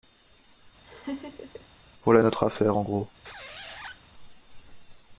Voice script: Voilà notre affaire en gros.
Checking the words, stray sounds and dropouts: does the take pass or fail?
fail